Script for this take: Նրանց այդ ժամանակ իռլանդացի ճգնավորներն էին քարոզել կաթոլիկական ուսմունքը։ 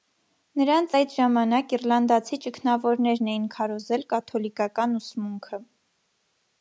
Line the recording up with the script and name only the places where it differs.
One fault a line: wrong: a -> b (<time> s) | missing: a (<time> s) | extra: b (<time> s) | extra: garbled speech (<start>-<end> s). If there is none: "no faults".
no faults